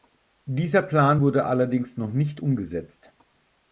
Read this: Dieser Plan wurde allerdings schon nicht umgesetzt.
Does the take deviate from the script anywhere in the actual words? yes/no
yes